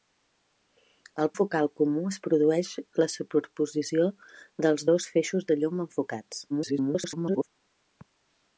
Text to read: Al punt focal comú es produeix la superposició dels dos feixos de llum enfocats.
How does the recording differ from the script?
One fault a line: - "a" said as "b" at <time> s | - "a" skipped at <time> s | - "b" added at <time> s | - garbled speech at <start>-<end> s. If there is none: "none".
- "punt" skipped at 1.3 s
- garbled speech at 6.5-7.5 s